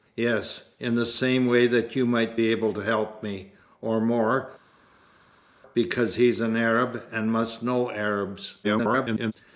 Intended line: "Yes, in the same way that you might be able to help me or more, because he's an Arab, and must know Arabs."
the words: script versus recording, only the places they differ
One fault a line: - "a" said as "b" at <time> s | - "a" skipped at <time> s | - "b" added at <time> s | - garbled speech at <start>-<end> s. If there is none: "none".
- garbled speech at 8.6-9.3 s